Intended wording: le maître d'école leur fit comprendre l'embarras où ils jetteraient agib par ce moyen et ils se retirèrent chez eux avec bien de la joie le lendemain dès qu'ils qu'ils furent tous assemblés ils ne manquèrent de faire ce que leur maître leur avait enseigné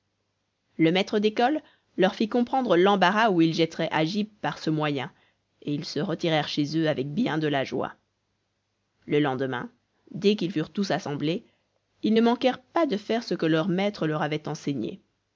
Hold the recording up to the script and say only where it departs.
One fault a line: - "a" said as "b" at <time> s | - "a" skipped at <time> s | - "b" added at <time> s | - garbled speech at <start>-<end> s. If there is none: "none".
- "qu'ils" skipped at 10.5 s
- "pas" added at 12.6 s